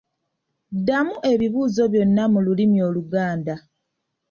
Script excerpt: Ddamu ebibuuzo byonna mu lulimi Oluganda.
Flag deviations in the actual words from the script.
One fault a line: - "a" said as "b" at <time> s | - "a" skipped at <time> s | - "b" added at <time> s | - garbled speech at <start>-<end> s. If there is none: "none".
none